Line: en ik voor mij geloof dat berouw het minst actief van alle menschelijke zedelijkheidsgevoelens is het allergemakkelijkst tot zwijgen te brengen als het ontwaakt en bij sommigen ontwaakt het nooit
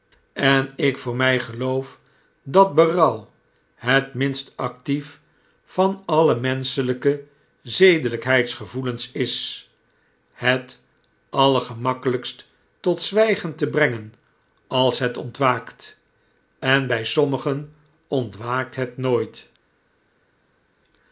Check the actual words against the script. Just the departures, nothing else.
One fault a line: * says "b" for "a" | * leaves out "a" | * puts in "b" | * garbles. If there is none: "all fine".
all fine